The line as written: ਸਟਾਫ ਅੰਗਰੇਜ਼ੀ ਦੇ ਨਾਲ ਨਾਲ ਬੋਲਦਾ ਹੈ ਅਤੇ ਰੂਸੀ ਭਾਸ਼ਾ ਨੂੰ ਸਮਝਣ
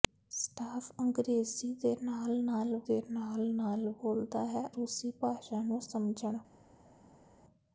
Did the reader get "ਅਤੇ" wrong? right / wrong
wrong